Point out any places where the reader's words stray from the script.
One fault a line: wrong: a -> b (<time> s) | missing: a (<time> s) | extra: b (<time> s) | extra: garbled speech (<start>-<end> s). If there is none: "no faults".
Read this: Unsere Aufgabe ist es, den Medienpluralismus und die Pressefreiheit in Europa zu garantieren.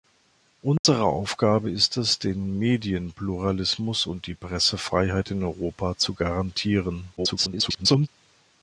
extra: garbled speech (7.2-8.1 s)